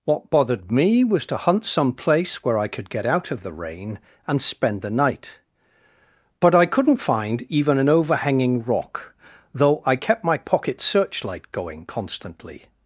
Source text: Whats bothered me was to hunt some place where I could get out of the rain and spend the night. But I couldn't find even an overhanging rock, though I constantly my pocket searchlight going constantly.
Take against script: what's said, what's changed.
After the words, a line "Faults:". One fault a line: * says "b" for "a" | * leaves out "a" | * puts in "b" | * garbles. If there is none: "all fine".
What bothered me was to hunt some place where I could get out of the rain and spend the night. But I couldn't find even an overhanging rock, though I kept my pocket searchlight going constantly.
Faults:
* says "What" for "Whats"
* says "kept" for "constantly"